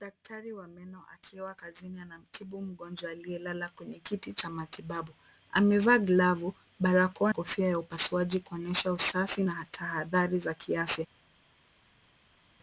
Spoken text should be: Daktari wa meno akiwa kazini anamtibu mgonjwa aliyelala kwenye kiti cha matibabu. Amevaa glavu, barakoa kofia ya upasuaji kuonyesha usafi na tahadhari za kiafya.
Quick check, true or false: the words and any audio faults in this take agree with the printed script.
true